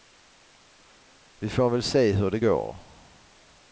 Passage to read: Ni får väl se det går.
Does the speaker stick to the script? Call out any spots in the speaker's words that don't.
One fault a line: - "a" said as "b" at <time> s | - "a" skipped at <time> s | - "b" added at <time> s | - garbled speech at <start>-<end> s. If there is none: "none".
- "Ni" said as "Vi" at 1.4 s
- "hur" added at 2.1 s